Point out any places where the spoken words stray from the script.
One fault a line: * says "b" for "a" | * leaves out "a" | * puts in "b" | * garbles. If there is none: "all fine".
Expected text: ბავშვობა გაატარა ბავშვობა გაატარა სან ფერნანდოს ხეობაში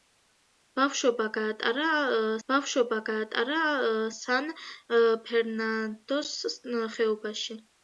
all fine